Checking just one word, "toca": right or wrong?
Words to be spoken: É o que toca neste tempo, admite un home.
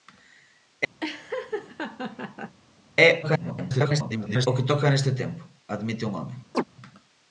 right